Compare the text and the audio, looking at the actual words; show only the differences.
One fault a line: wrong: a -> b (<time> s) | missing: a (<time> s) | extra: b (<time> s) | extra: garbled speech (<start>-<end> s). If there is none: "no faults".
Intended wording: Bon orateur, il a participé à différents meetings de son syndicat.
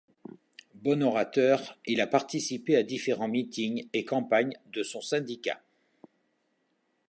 extra: et campagnes (3.9 s)